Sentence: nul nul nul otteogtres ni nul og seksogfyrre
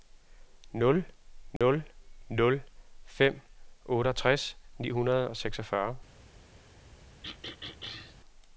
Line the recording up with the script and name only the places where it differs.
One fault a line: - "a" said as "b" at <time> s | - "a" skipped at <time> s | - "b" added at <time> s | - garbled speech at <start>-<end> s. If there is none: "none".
- "fem" added at 3.0 s
- "nul" said as "hundrede" at 4.9 s